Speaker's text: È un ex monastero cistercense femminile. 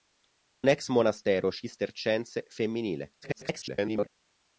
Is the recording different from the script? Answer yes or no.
yes